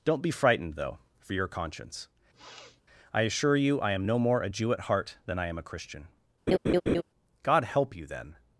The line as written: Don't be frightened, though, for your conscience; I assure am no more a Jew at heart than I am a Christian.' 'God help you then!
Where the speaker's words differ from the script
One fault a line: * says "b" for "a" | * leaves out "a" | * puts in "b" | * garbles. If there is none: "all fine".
* puts in "you I"